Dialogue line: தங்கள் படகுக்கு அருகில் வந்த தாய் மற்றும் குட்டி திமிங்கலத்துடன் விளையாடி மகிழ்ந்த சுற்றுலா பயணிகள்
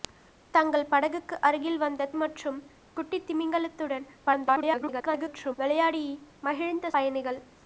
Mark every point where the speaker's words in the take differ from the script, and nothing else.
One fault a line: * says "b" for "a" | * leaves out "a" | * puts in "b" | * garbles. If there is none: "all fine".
* leaves out "தாய்"
* garbles
* leaves out "சுற்றுலா"